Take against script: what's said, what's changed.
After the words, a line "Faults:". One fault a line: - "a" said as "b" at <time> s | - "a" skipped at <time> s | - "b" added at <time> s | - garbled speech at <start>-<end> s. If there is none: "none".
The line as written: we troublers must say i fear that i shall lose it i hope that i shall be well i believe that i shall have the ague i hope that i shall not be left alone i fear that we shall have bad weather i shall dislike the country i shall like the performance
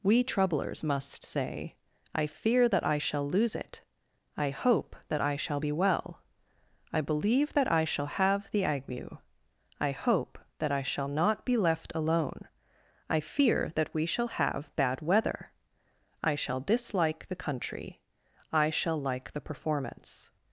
we troublers must say i fear that i shall lose it i hope that i shall be well i believe that i shall have the ague i hope that i shall not be left alone i fear that we shall have bad weather i shall dislike the country i shall like the performance
Faults:
none